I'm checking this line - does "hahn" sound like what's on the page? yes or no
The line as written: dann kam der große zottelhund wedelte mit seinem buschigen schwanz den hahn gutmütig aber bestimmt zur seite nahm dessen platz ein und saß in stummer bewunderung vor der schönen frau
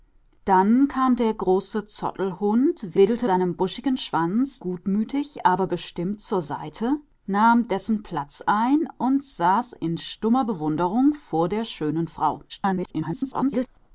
no